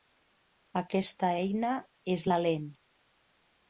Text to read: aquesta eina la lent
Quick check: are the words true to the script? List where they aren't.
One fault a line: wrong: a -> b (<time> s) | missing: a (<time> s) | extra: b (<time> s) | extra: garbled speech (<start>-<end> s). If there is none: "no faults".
extra: és (2.2 s)